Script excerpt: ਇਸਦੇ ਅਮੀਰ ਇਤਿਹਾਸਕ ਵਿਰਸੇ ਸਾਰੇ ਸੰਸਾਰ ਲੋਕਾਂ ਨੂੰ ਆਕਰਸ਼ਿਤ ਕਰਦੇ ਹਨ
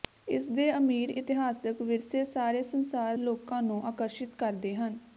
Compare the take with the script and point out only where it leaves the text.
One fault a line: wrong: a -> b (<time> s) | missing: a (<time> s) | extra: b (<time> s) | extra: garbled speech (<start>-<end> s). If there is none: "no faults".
no faults